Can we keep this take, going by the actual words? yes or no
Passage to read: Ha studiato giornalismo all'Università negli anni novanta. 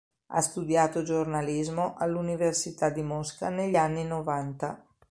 no